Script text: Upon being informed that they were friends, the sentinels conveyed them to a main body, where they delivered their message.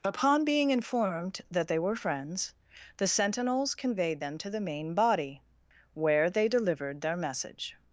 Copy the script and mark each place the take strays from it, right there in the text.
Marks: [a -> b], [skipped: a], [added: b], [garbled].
Upon being informed that they were friends, the sentinels conveyed them to [a -> the] main body, where they delivered their message.